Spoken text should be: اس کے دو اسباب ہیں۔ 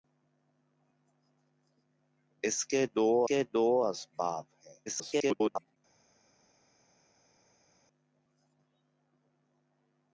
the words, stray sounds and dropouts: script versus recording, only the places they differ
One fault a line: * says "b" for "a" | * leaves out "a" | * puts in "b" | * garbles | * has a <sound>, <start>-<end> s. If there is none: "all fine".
* puts in "کے دو"
* garbles